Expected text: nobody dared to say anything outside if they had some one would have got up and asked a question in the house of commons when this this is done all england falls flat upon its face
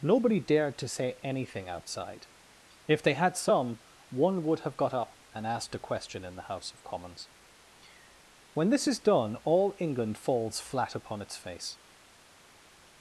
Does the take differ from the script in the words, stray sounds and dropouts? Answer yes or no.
yes